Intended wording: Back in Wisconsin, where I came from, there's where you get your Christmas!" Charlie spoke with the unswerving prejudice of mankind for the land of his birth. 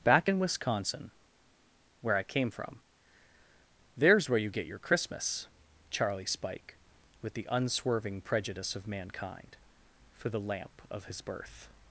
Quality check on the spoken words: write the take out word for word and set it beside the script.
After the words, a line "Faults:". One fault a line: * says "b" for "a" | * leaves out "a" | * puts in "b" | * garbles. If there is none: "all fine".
Back in Wisconsin, where I came from, there's where you get your Christmas!" Charlie spike with the unswerving prejudice of mankind for the lamp of his birth.
Faults:
* says "spike" for "spoke"
* says "lamp" for "land"